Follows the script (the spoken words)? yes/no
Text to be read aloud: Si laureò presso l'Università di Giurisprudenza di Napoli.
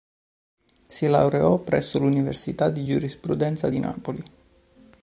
yes